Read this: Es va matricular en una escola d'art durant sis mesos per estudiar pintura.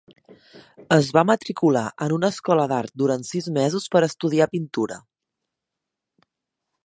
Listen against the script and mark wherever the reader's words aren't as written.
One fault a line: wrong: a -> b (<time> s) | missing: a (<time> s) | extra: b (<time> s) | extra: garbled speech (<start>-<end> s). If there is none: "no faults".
no faults